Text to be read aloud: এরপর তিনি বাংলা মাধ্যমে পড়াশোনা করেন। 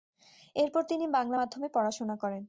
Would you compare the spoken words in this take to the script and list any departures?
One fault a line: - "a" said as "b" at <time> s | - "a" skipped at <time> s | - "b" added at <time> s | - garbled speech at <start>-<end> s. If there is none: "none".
none